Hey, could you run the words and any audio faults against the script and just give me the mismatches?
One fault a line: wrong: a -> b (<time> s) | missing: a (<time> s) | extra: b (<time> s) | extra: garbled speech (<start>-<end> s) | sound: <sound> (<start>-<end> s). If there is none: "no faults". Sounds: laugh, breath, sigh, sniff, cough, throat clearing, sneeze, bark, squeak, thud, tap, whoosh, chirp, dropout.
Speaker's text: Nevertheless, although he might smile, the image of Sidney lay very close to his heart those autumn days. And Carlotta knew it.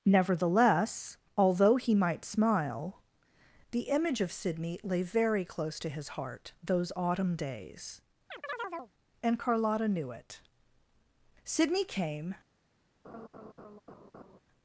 sound: chirp (8.3-8.9 s)
extra: Sidney came (11.4 s)
sound: laugh (13.0-14.4 s)